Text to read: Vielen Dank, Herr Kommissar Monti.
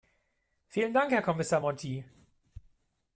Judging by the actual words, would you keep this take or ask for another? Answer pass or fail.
pass